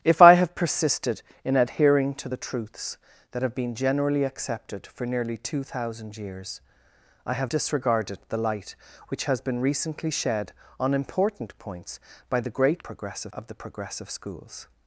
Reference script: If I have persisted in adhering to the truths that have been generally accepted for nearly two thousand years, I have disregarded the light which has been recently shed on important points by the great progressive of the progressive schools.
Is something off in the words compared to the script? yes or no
no